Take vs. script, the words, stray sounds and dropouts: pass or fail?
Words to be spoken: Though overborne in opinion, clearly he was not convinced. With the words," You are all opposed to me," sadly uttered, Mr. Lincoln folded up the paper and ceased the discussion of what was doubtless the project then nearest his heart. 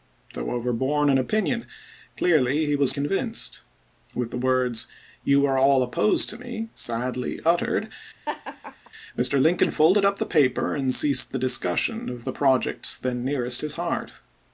fail